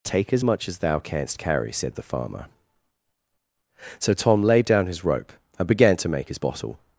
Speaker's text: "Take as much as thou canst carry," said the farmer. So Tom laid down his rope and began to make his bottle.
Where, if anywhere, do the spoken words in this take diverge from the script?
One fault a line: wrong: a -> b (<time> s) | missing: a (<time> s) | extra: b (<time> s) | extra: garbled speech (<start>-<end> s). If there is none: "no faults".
no faults